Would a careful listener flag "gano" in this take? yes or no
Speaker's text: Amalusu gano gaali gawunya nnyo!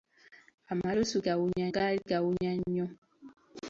yes